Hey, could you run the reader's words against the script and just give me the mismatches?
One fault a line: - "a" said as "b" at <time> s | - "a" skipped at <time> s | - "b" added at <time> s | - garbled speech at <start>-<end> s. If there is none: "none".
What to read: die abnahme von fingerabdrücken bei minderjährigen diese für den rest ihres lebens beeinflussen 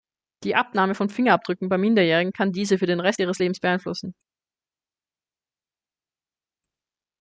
- "kann" added at 2.3 s